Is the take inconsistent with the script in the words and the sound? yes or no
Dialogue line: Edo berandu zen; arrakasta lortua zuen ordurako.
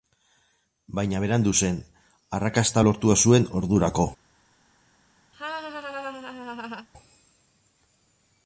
yes